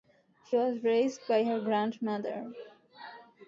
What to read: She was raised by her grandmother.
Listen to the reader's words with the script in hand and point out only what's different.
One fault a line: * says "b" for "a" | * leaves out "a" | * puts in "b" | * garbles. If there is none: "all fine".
all fine